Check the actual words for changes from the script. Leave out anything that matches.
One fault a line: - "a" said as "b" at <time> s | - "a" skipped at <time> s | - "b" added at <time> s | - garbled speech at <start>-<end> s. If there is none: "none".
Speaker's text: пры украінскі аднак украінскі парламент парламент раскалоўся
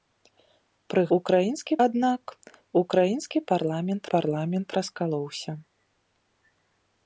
none